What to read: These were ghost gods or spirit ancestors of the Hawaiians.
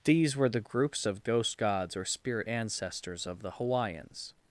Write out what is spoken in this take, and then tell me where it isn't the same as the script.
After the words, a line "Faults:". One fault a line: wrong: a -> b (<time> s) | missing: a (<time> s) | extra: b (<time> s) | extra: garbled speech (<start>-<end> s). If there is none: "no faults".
These were the groups of ghost gods or spirit ancestors of the Hawaiians.
Faults:
extra: the groups of (0.5 s)